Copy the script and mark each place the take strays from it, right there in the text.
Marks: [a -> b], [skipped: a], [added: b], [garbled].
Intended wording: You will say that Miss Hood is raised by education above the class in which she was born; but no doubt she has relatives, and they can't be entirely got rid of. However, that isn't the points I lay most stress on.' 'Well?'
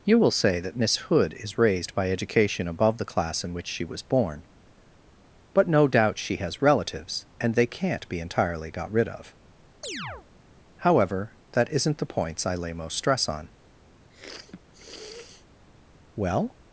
You will say that Miss Hood is raised by education above the class in which she was born; but no doubt she has relatives, and they can't be entirely got rid of. However, that isn't the points I lay most stress on.' 'Well?'